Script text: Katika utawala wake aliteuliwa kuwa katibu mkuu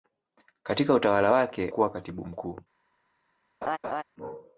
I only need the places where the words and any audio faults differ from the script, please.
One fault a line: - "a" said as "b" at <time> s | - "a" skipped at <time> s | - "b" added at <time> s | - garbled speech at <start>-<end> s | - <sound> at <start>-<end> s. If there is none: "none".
- "aliteuliwa" skipped at 1.7 s
- laugh at 3.6-4.0 s